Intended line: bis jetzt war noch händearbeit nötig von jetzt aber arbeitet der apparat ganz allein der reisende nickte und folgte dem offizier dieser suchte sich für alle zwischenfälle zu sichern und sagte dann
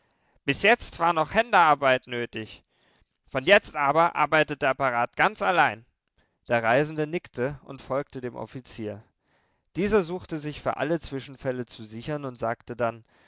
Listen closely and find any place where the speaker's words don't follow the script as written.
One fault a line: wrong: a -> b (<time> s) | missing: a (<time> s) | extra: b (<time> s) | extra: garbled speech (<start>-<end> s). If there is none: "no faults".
no faults